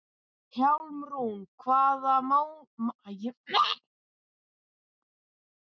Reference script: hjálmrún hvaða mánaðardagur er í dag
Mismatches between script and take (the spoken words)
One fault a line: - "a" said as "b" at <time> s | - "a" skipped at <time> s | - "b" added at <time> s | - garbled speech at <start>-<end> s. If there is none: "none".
none